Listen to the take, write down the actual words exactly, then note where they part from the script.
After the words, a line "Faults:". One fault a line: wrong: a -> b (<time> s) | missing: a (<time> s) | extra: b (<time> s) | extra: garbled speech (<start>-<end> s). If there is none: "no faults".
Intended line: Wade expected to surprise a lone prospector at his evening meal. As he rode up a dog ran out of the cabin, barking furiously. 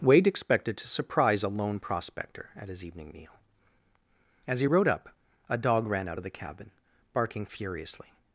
Wade expected to surprise a lone prospector at his evening meal. As he rode up a dog ran out of the cabin, barking furiously.
Faults:
no faults